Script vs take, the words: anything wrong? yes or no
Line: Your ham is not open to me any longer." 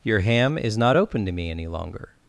no